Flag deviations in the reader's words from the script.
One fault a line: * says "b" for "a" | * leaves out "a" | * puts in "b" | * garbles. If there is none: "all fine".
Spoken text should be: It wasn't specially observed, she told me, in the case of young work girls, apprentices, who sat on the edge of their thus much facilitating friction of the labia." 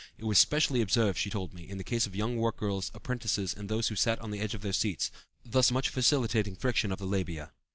* says "was" for "wasn't"
* puts in "and those"
* puts in "seats"